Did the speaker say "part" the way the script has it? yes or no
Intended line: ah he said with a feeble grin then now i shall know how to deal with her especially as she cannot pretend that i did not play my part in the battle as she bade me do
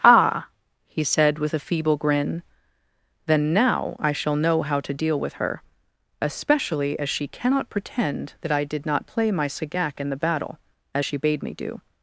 no